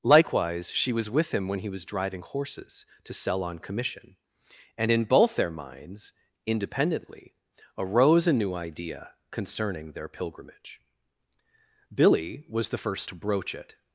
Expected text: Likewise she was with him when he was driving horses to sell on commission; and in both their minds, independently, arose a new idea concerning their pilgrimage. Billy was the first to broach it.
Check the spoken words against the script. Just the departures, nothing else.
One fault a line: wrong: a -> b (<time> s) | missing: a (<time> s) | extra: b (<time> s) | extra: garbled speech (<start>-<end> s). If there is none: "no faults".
no faults